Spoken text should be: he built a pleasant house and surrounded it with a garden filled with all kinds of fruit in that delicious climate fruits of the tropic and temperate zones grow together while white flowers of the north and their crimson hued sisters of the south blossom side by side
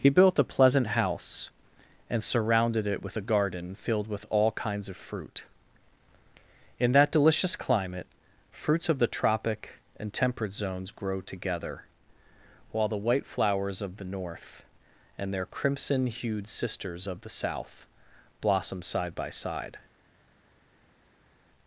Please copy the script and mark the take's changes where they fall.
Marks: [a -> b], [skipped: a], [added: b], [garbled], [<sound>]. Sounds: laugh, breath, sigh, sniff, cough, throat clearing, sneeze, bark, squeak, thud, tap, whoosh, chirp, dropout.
he built a pleasant house and surrounded it with a garden filled with all kinds of fruit in that delicious climate fruits of the tropic and temperate zones grow together while [added: the] white flowers of the north and their crimson hued sisters of the south blossom side by side